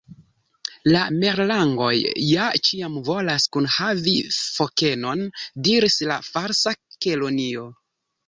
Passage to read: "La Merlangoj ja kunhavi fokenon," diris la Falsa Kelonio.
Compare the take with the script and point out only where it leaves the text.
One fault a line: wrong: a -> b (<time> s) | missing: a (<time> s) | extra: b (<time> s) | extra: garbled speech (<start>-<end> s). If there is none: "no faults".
extra: ĉiam volas (2.7 s)